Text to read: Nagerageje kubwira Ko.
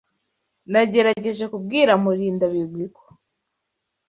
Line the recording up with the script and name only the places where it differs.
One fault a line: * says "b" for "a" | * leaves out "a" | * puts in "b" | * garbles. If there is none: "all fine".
* puts in "Murindabigwi"